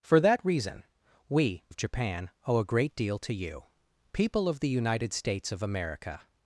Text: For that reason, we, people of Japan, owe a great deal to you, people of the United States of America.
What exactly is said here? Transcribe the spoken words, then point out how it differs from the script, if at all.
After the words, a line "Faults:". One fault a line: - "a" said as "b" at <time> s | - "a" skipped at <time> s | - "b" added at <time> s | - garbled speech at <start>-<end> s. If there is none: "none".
For that reason, we, of Japan, owe a great deal to you, people of the United States of America.
Faults:
- "people" skipped at 1.6 s